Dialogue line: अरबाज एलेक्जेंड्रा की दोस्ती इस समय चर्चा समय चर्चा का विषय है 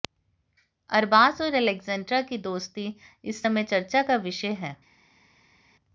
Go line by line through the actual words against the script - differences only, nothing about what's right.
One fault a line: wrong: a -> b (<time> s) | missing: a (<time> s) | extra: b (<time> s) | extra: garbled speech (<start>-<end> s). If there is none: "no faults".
extra: और (1.4 s)
missing: समय चर्चा (4.0 s)